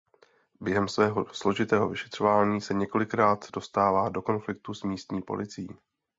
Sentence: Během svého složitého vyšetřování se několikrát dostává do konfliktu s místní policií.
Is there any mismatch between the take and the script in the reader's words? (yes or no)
no